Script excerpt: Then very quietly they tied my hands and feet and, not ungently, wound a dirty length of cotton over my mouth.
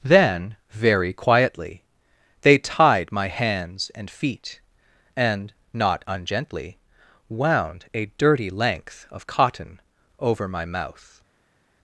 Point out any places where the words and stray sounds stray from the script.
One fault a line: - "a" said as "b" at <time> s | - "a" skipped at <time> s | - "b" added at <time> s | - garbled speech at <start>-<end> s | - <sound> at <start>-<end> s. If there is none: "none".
none